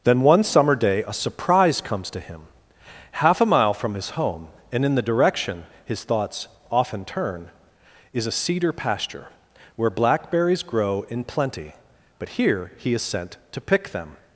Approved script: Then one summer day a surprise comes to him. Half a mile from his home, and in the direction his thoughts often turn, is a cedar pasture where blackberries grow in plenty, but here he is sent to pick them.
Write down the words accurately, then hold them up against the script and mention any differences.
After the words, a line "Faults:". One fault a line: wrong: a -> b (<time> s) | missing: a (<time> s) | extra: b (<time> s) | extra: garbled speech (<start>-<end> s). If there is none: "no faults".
Then one summer day a surprise comes to him. Half a mile from his home, and in the direction his thoughts often turn, is a cedar pasture where blackberries grow in plenty, but here he is sent to pick them.
Faults:
no faults